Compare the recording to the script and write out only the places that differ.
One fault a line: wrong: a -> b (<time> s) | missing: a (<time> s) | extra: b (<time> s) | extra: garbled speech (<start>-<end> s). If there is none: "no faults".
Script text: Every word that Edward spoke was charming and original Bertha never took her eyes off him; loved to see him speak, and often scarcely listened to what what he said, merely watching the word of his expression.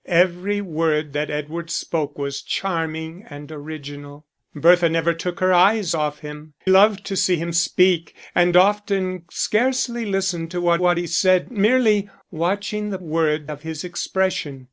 no faults